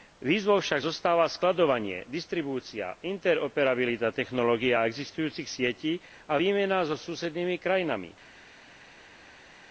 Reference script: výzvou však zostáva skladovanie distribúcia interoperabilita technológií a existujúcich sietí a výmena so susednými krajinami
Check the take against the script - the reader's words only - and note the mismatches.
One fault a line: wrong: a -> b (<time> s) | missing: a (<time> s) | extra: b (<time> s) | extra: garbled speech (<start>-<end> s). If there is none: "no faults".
no faults